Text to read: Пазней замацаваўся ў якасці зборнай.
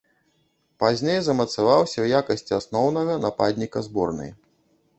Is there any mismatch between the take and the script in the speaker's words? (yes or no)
yes